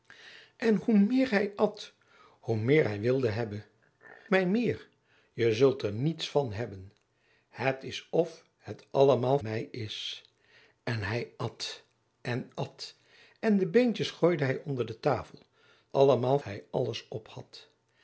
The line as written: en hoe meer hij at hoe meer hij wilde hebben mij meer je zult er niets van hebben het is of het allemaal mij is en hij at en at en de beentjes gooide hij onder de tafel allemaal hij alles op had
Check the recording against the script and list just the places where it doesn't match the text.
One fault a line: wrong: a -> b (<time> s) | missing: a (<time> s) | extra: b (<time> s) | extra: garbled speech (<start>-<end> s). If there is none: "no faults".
no faults